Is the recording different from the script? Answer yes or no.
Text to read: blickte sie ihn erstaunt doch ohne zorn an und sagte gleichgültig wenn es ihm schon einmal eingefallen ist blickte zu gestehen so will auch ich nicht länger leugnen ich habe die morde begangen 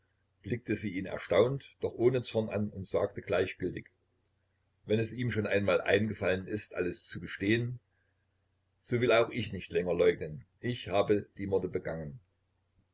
yes